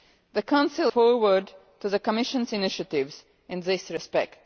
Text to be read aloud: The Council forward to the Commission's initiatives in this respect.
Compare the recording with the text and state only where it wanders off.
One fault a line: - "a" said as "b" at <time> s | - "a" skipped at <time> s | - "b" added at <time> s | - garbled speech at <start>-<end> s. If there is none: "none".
none